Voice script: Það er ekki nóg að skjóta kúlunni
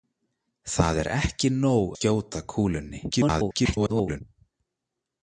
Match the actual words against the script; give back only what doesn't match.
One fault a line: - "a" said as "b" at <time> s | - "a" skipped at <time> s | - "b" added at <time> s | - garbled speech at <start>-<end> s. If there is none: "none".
- "að" skipped at 1.9 s
- garbled speech at 3.1-4.2 s